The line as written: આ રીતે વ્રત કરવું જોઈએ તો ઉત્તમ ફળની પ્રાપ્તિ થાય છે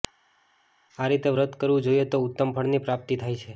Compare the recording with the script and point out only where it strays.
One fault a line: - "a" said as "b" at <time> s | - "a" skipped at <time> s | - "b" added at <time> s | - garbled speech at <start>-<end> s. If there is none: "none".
none